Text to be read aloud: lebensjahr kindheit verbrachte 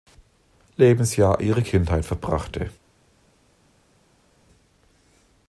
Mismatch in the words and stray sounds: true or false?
true